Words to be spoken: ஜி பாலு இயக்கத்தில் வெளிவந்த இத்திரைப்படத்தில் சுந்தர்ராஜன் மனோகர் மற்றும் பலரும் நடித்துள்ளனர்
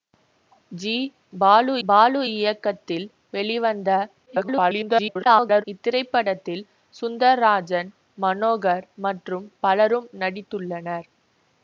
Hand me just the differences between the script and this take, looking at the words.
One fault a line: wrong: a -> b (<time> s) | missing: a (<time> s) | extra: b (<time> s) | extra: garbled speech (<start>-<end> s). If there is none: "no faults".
extra: பாலு (1.9 s)
extra: garbled speech (4.3-5.6 s)